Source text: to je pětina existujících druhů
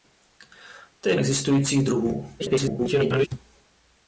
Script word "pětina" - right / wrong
wrong